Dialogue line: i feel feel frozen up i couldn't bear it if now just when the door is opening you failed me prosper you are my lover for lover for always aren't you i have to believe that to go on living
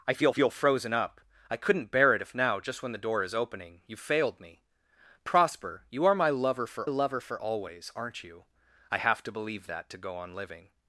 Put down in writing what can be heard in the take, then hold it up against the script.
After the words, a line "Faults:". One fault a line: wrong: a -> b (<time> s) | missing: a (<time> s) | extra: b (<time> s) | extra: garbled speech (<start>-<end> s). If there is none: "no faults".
i feel feel frozen up i couldn't bear it if now just when the door is opening you failed me prosper you are my lover for lover for always aren't you i have to believe that to go on living
Faults:
no faults